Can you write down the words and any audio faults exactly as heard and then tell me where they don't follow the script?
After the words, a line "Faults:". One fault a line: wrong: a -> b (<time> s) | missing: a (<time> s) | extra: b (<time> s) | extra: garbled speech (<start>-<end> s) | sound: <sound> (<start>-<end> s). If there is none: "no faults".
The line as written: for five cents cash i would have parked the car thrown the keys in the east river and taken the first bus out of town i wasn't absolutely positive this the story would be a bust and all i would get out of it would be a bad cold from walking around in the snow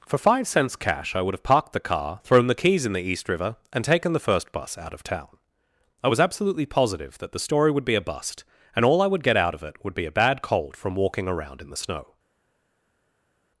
for five cents cash i would have parked the car thrown the keys in the east river and taken the first bus out of town i was absolutely positive that the story would be a bust and all i would get out of it would be a bad cold from walking around in the snow
Faults:
wrong: wasn't -> was (6.1 s)
wrong: this -> that (7.2 s)